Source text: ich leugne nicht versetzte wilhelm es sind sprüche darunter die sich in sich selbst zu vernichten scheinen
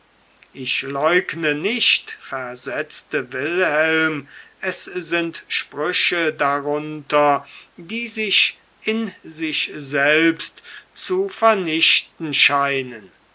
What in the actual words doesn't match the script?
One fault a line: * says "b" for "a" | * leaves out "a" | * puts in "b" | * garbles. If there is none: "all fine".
all fine